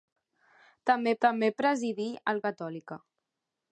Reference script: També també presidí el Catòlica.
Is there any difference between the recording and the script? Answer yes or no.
no